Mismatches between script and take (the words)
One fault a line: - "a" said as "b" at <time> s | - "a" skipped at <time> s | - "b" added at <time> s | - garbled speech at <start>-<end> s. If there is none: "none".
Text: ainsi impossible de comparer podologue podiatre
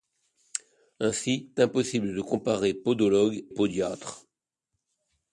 none